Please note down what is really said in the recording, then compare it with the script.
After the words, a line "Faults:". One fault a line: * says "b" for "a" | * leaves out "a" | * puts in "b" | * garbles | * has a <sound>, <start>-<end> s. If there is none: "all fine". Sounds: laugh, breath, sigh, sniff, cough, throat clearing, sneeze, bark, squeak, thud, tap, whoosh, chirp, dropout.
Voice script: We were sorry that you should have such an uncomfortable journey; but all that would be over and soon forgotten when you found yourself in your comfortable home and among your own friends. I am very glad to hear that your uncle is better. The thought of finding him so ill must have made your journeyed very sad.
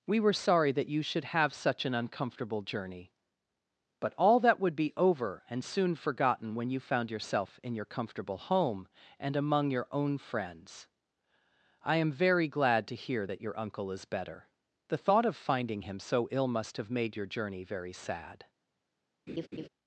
We were sorry that you should have such an uncomfortable journey; but all that would be over and soon forgotten when you found yourself in your comfortable home and among your own friends. I am very glad to hear that your uncle is better. The thought of finding him so ill must have made your journey very sad.
Faults:
* says "journey" for "journeyed"
* has a laugh, 19.3-19.7 s